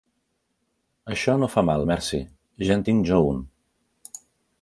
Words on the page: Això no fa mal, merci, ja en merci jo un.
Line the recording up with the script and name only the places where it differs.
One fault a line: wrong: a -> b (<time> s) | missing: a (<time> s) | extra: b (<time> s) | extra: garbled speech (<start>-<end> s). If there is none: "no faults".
wrong: merci -> tinc (2.9 s)